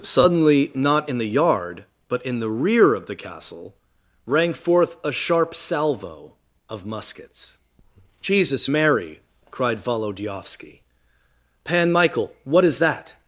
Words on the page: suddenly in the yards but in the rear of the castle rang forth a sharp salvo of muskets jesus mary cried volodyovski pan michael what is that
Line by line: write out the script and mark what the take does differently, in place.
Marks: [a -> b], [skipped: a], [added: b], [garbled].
suddenly [added: not] in the [yards -> yard] but in the rear of the castle rang forth a sharp salvo of muskets jesus mary cried volodyovski pan michael what is that